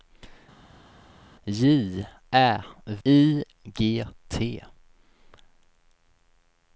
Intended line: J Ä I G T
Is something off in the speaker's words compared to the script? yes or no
no